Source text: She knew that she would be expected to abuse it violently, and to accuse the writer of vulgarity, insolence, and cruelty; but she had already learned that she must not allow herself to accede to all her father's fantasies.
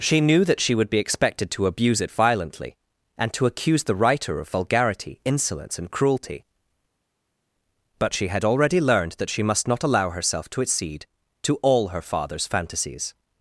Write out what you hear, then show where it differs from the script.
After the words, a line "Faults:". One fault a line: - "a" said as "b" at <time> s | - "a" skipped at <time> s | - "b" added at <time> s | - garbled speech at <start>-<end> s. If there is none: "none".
She knew that she would be expected to abuse it violently, and to accuse the writer of vulgarity, insolence, and cruelty; but she had already learned that she must not allow herself to accede to all her father's fantasies.
Faults:
none